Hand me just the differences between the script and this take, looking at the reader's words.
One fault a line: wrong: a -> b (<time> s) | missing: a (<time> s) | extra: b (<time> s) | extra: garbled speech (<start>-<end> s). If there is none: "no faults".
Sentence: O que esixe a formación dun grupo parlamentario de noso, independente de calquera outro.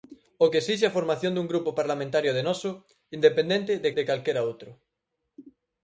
extra: de (4.0 s)